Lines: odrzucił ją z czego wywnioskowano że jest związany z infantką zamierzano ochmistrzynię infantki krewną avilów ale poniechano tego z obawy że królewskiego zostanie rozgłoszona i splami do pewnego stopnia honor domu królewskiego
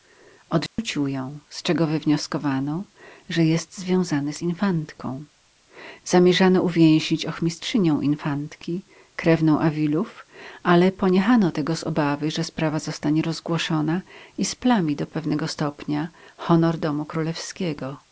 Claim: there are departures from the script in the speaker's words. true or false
true